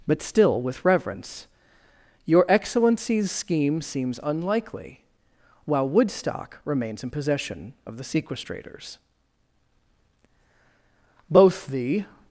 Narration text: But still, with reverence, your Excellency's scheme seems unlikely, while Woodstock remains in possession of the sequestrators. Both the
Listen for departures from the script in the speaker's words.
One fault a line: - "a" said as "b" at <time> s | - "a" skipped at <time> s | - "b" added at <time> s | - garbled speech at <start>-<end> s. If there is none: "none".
none